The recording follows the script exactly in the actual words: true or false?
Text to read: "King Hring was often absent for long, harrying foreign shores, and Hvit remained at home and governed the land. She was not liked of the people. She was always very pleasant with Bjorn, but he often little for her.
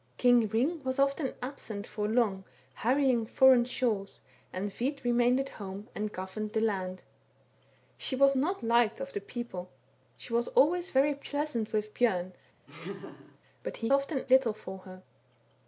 true